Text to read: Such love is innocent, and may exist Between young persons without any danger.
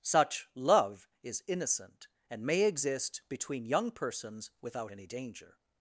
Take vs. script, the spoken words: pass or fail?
pass